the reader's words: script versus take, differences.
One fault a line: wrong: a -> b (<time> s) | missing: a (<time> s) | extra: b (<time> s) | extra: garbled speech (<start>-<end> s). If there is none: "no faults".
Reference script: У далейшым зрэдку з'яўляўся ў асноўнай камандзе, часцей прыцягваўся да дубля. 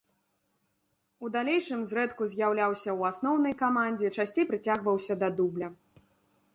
no faults